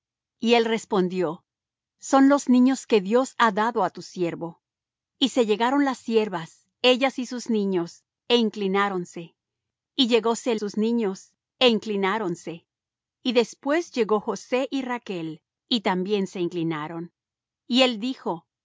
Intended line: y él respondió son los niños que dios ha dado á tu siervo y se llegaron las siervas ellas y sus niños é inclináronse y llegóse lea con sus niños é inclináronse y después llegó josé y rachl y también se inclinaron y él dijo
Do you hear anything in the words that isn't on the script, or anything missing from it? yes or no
yes